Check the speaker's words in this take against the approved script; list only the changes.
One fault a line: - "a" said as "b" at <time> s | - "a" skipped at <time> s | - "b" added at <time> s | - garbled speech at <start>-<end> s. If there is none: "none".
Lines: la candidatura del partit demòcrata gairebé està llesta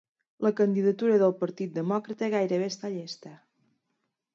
none